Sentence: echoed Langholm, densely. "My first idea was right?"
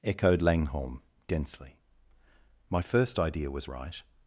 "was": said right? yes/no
yes